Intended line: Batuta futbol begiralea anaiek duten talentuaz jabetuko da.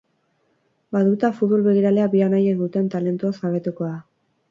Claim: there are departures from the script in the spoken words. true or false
true